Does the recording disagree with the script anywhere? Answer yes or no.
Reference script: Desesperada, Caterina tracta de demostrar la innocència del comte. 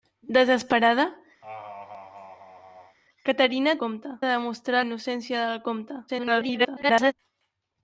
yes